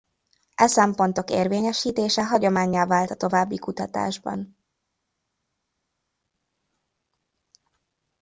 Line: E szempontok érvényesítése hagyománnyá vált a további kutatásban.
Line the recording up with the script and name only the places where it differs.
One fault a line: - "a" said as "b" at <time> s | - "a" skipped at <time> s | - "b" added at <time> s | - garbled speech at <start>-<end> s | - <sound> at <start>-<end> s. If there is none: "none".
none